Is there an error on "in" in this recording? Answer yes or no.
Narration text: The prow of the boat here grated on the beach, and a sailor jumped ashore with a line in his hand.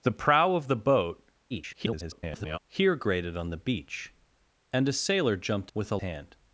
yes